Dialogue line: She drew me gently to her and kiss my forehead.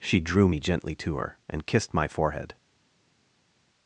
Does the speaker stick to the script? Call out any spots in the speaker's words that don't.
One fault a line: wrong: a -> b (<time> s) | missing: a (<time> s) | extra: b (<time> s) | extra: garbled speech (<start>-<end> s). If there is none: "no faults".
wrong: kiss -> kissed (1.7 s)